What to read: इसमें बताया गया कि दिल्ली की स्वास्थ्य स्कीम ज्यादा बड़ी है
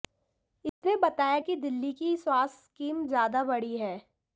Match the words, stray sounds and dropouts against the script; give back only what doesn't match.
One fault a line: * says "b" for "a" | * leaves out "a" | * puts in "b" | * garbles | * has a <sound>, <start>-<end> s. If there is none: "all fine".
* has a dropout, 0.7-0.8 s
* leaves out "गया"